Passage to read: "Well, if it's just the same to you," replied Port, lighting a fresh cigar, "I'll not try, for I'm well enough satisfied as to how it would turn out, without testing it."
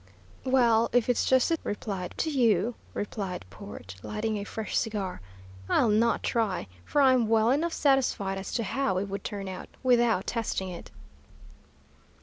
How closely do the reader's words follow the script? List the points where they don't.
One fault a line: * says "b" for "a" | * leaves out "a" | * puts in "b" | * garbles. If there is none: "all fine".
* says "replied" for "same"